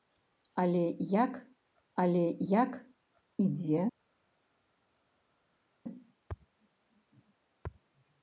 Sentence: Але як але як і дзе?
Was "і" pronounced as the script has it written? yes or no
yes